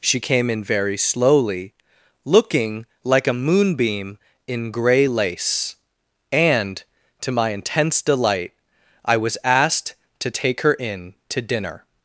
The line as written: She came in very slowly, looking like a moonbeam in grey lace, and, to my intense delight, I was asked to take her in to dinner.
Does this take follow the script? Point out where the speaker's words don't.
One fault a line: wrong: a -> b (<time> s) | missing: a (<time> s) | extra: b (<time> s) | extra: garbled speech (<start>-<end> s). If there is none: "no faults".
no faults